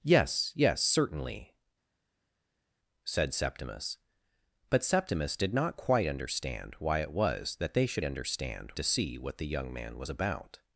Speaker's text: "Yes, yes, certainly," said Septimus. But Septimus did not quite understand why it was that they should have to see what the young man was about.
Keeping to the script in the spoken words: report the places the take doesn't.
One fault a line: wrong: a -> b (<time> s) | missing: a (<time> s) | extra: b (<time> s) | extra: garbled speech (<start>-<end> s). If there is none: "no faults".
wrong: have -> understand (8.0 s)